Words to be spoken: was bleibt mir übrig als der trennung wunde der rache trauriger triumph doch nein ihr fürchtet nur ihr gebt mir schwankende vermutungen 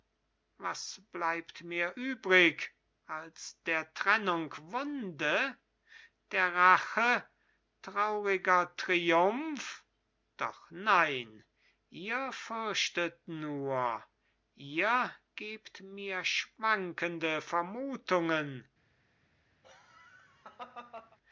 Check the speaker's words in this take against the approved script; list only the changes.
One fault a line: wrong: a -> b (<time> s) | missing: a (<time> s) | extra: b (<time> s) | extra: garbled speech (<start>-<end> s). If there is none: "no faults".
no faults